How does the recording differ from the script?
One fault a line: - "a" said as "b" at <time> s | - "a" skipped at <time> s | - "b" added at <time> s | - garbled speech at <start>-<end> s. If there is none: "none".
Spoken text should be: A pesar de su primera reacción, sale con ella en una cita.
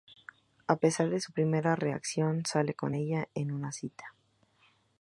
none